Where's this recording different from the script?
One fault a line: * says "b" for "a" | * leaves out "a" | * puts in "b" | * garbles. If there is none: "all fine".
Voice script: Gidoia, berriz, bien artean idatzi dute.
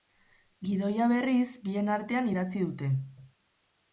all fine